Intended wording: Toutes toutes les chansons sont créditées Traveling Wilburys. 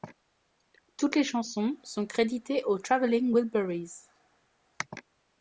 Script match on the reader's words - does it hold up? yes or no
no